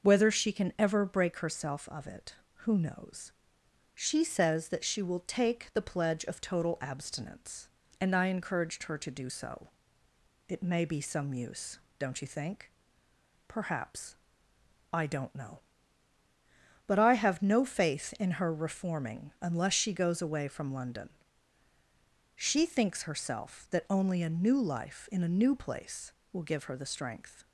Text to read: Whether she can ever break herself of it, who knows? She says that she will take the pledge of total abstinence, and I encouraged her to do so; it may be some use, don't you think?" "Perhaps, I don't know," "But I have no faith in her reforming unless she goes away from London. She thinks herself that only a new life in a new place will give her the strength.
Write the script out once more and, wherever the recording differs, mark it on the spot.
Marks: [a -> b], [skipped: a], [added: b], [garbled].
Whether she can ever break herself of it, who knows? She says that she will take the pledge of total abstinence, and I encouraged her to do so; it may be some use, don't you think?" "Perhaps, I don't know," "But I have no faith in her reforming unless she goes away from London. She thinks herself that only a new life in a new place will give her the strength.